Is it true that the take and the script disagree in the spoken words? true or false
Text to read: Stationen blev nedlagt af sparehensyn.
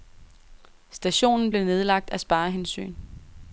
false